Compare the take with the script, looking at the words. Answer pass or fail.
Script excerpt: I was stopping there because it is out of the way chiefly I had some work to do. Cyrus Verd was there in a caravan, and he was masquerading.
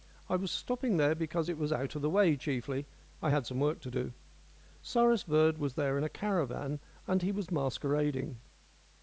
fail